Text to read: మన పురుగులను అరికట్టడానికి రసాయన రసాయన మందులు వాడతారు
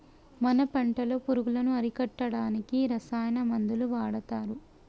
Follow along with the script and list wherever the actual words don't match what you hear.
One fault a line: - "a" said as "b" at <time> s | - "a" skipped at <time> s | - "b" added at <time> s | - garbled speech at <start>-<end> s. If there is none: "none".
- "పంటలో" added at 0.7 s
- "రసాయన" skipped at 3.4 s